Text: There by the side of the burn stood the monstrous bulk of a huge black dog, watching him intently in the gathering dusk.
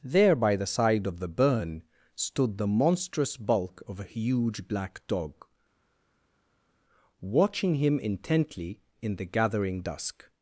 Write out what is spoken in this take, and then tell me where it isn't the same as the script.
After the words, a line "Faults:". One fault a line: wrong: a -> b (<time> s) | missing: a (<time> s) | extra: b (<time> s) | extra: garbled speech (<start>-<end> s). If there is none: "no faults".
There by the side of the burn stood the monstrous bulk of a huge black dog, watching him intently in the gathering dusk.
Faults:
no faults